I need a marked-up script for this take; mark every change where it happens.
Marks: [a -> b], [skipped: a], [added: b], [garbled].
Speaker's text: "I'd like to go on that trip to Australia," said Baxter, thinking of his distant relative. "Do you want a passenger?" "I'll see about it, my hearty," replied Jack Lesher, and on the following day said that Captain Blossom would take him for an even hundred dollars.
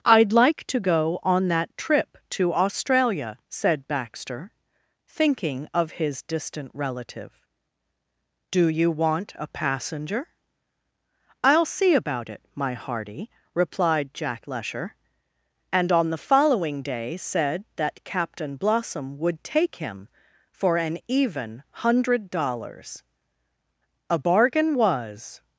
"I'd like to go on that trip to Australia," said Baxter, thinking of his distant relative. "Do you want a passenger?" "I'll see about it, my hearty," replied Jack Lesher, and on the following day said that Captain Blossom would take him for an even hundred dollars. [added: A bargain was]